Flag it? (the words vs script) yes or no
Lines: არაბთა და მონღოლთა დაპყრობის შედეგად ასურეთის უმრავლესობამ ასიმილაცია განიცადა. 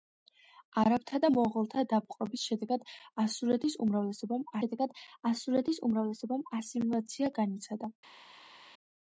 yes